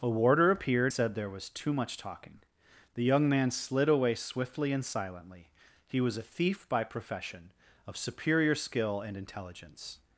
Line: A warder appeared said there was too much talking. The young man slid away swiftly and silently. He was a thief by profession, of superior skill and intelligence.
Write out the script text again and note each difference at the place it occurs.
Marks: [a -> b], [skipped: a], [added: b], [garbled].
A warder appeared said there was too much talking. The young man slid away swiftly and silently. He was a thief by profession, of superior skill and intelligence.